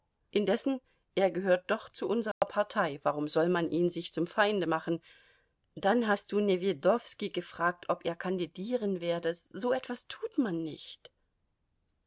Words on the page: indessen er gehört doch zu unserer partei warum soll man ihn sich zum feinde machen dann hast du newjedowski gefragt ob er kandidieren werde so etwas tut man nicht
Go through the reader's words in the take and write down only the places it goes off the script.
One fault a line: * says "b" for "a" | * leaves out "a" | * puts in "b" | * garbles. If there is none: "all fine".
all fine